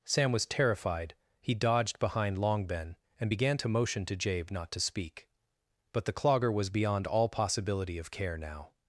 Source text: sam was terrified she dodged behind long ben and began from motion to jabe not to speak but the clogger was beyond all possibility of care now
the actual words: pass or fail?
fail